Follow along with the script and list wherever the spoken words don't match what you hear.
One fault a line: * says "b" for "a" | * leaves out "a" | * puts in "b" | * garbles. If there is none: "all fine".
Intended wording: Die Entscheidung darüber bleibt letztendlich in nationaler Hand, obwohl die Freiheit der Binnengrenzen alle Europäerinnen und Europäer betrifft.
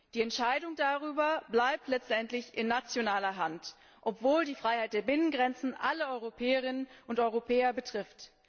all fine